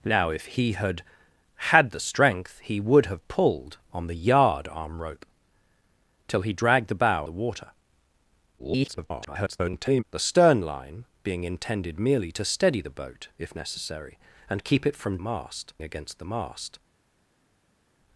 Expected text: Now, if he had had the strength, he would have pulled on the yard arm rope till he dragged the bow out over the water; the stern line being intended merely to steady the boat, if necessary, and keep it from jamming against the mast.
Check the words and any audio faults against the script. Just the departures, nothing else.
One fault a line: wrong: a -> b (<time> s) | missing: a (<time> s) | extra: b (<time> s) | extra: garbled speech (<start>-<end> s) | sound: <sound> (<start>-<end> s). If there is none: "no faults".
missing: out over (7.3 s)
extra: garbled speech (8.6-10.0 s)
wrong: jamming -> mast (15.2 s)